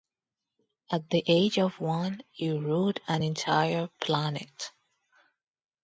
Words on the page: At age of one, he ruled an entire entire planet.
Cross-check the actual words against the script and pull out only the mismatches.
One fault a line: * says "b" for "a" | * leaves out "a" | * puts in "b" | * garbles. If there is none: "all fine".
* puts in "the"
* leaves out "entire"